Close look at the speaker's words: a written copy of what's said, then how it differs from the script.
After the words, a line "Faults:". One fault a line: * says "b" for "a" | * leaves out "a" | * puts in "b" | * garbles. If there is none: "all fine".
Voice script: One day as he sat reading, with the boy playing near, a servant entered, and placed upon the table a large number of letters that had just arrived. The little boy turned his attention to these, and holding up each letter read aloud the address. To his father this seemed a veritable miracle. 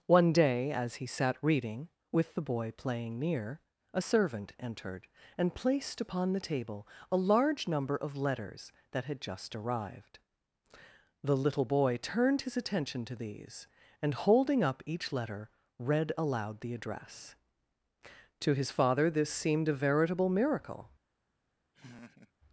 One day as he sat reading, with the boy playing near, a servant entered, and placed upon the table a large number of letters that had just arrived. The little boy turned his attention to these, and holding up each letter read aloud the address. To his father this seemed a veritable miracle.
Faults:
all fine